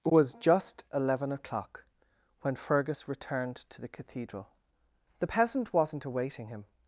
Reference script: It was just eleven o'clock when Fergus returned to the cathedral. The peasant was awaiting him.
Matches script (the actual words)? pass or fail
fail